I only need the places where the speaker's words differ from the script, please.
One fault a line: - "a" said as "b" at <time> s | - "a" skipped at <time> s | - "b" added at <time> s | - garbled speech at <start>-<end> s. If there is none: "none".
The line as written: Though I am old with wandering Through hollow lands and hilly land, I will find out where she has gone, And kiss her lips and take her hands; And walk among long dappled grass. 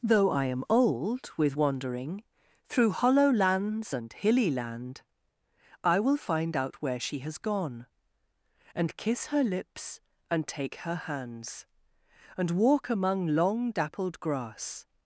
none